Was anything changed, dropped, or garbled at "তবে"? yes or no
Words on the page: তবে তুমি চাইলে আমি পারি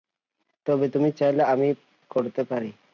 no